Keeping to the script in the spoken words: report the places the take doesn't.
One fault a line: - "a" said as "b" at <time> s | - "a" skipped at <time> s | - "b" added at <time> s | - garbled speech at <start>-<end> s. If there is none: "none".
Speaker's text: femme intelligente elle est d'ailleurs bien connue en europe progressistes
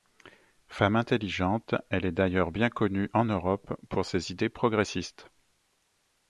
- "pour ses idées" added at 3.9 s